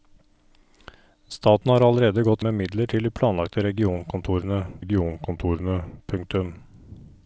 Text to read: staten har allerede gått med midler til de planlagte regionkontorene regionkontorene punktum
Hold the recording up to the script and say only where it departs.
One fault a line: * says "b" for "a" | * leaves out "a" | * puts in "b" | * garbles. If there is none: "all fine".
all fine